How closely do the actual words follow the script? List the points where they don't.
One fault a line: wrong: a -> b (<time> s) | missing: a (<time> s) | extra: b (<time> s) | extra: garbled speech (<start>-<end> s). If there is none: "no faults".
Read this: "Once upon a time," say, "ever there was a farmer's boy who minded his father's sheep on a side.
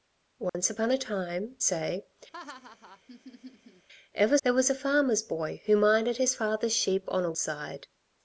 no faults